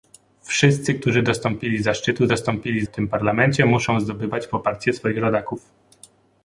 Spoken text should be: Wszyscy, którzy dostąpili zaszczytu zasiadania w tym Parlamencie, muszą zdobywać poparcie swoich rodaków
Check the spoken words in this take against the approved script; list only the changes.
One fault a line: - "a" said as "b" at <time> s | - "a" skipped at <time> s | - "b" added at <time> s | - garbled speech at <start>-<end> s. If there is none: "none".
- "zasiadania" said as "dostąpili" at 2.3 s